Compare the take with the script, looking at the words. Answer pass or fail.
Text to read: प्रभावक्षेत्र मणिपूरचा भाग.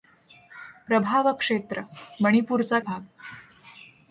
pass